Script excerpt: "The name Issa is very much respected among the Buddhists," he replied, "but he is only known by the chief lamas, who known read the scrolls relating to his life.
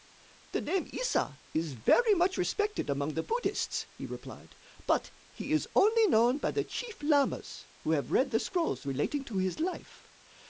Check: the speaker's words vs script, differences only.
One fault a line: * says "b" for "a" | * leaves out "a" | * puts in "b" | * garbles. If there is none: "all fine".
* says "have" for "known"